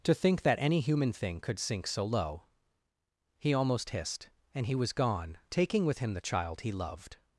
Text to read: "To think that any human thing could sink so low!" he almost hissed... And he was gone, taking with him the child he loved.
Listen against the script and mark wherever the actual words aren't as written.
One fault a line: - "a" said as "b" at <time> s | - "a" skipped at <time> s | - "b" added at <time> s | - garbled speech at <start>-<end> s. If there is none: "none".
none